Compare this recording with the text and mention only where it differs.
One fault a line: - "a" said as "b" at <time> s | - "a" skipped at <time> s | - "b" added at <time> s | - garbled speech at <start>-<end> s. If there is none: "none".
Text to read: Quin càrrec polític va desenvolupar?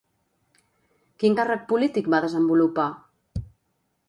none